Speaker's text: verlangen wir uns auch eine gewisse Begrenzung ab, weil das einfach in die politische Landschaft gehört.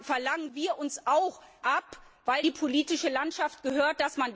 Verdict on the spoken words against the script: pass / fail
fail